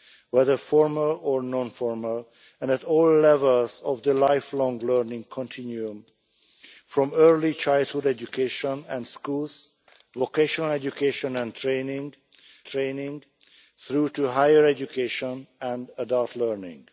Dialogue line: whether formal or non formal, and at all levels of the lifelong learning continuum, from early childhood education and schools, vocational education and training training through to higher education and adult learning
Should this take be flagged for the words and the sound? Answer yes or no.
no